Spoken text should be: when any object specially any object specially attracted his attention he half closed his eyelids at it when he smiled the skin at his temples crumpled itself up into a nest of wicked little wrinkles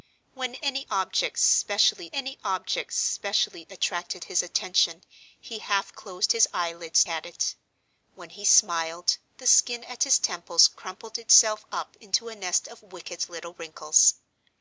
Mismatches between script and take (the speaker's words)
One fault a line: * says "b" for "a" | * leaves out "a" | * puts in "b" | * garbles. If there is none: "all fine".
all fine